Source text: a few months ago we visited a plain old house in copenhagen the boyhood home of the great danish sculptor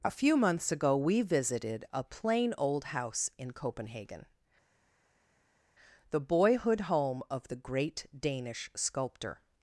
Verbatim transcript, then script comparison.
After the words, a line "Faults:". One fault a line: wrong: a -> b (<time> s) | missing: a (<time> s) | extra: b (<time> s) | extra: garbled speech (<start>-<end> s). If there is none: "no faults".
a few months ago we visited a plain old house in copenhagen the boyhood home of the great danish sculptor
Faults:
no faults